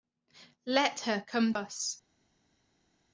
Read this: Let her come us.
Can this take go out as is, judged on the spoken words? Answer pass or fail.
pass